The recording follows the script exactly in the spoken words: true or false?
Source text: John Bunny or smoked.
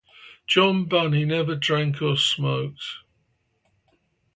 false